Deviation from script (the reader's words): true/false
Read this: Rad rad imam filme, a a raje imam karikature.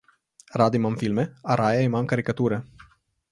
true